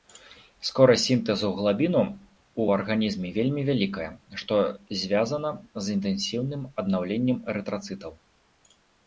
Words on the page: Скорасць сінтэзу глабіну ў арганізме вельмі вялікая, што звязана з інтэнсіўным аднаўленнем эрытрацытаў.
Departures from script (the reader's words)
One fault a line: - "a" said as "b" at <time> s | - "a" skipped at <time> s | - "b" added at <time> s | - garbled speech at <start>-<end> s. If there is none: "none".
none